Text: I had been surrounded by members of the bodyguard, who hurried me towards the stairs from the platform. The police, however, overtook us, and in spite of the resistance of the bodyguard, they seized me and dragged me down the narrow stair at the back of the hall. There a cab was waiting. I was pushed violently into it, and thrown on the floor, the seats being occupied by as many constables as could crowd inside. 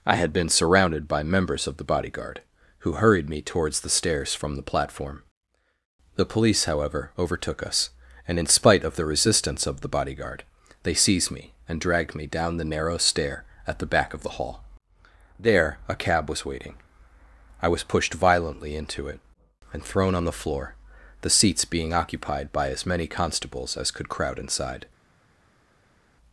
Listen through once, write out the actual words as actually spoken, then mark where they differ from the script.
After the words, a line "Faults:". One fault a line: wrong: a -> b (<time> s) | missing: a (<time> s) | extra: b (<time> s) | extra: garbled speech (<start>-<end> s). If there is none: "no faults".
I had been surrounded by members of the bodyguard, who hurried me towards the stairs from the platform. The police, however, overtook us, and in spite of the resistance of the bodyguard, they seized me and dragged me down the narrow stair at the back of the hall. There a cab was waiting. I was pushed violently into it, and thrown on the floor, the seats being occupied by as many constables as could crowd inside.
Faults:
no faults